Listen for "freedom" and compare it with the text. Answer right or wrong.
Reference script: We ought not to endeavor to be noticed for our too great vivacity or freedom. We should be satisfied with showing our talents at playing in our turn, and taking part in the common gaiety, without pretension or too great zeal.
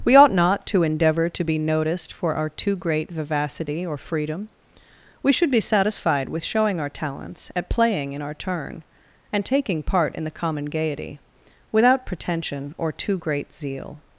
right